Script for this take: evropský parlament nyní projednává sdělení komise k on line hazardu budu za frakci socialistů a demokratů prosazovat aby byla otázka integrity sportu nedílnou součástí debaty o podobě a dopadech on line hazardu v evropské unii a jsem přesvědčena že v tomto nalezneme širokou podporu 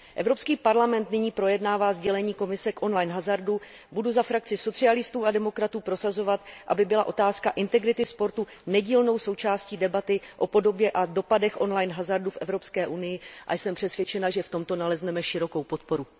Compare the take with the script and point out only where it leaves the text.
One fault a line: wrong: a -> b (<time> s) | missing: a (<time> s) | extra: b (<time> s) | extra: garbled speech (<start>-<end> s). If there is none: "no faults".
no faults